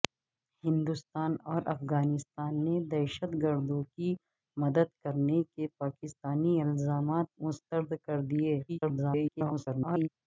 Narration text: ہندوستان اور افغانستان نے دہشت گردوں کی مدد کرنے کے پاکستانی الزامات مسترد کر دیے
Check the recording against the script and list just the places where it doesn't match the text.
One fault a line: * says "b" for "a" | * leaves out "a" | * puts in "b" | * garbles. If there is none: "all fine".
* garbles